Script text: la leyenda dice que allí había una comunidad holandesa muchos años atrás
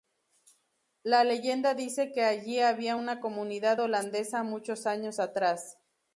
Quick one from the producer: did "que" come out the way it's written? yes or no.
yes